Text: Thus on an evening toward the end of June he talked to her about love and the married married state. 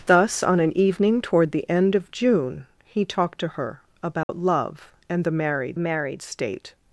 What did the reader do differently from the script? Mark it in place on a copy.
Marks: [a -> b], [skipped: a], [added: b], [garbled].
Thus on an evening toward the end of June he talked to her about love and the married married state.